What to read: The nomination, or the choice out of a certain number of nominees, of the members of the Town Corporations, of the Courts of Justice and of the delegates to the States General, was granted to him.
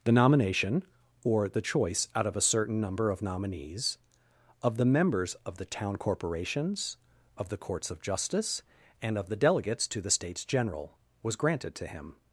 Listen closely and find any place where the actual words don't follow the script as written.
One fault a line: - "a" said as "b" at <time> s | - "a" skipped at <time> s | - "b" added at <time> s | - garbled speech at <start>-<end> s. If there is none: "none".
none